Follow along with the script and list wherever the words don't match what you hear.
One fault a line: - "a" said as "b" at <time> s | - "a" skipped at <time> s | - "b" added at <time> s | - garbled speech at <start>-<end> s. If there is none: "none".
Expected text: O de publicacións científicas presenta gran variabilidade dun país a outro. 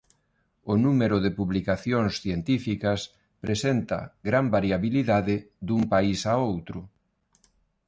- "número" added at 0.8 s